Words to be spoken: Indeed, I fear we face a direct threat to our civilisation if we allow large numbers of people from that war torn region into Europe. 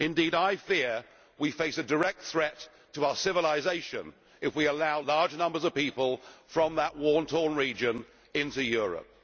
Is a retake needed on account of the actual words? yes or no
no